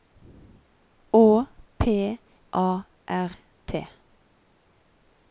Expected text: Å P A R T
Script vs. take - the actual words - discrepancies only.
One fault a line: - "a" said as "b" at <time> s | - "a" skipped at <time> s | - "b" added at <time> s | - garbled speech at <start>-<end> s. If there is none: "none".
none